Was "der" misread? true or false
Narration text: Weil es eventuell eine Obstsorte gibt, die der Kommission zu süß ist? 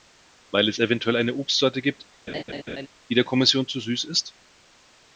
false